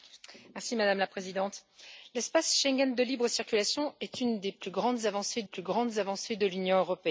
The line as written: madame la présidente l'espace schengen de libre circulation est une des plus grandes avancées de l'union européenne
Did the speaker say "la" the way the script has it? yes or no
yes